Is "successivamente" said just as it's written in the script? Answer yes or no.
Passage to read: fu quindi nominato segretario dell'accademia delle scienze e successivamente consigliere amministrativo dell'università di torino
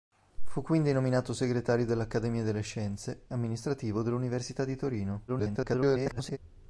no